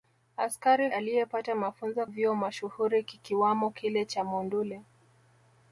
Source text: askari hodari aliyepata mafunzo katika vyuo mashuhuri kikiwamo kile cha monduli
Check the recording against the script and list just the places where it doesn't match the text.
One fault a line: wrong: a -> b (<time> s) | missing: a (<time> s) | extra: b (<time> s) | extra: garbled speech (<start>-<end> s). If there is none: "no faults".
missing: hodari (0.9 s)
missing: katika (2.1 s)